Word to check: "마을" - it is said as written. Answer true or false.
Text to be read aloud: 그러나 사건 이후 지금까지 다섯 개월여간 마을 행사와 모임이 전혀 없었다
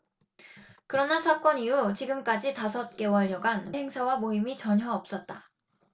false